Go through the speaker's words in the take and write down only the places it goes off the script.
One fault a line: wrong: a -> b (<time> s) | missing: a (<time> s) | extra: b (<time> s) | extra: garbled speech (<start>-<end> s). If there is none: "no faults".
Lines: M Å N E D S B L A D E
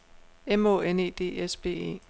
missing: L A D (1.8 s)